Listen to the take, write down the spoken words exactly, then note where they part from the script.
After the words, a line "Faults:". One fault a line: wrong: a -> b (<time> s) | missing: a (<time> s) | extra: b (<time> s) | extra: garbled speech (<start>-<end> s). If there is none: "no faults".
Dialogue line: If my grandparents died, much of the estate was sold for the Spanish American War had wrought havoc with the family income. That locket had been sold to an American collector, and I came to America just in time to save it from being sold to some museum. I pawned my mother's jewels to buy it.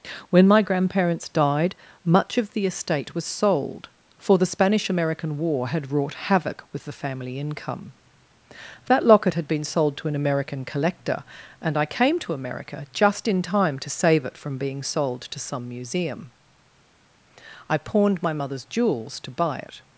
When my grandparents died, much of the estate was sold for the Spanish American War had wrought havoc with the family income. That locket had been sold to an American collector, and I came to America just in time to save it from being sold to some museum. I pawned my mother's jewels to buy it.
Faults:
wrong: If -> When (0.3 s)